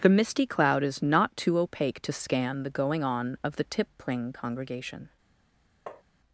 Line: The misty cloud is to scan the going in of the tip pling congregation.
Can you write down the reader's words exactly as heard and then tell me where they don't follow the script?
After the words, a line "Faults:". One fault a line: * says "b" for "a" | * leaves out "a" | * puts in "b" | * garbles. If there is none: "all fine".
The misty cloud is not too opaque to scan the going on of the tip pling congregation.
Faults:
* puts in "not too opaque"
* says "on" for "in"